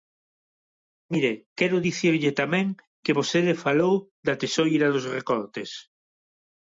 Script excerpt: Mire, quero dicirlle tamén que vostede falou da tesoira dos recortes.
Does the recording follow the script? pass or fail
pass